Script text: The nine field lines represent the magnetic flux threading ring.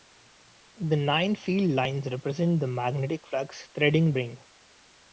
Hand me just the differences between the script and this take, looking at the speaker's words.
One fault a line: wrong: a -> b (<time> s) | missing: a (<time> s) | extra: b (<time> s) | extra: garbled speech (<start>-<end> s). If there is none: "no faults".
no faults